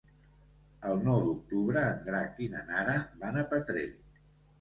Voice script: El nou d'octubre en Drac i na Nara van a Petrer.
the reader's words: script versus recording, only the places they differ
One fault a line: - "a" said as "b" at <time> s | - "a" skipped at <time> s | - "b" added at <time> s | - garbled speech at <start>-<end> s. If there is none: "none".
none